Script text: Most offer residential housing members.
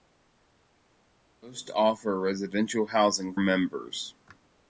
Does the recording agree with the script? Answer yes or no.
yes